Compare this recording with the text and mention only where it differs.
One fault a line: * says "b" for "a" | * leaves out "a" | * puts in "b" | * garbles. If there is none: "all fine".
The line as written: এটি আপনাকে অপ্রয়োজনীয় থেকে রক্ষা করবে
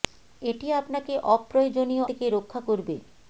all fine